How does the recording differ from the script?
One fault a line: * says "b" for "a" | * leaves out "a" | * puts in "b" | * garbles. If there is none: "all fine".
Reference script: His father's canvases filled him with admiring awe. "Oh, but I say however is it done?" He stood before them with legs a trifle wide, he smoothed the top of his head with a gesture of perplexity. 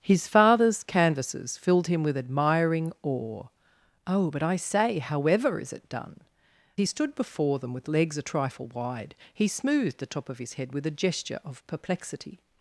all fine